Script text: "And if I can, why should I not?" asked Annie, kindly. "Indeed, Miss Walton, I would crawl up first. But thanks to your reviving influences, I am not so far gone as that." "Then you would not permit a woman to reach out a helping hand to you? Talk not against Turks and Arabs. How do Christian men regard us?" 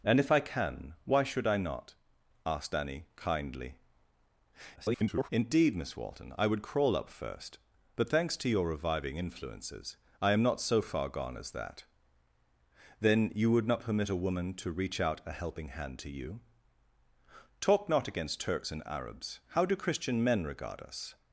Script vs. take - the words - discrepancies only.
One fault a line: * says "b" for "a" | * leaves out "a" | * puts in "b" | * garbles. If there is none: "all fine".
* garbles